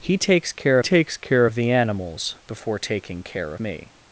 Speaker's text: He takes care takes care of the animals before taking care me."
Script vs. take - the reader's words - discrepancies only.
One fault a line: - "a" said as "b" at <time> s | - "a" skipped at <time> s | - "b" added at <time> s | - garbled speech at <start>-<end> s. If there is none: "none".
none